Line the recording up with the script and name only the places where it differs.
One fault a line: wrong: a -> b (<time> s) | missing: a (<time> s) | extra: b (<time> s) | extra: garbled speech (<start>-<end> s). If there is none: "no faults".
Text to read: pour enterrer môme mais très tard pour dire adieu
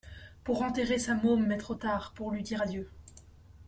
extra: sa (1.0 s)
wrong: très -> trop (1.6 s)
extra: lui (2.3 s)